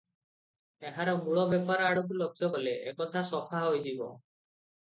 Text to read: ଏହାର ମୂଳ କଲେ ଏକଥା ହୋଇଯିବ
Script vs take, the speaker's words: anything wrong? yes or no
yes